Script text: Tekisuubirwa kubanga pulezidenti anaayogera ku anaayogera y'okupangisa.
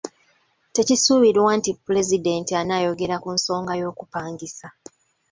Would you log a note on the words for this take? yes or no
yes